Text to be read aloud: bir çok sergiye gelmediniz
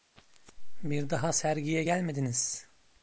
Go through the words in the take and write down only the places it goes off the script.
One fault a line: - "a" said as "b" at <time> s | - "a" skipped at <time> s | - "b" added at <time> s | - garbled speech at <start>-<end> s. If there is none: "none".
- "çok" said as "daha" at 1.1 s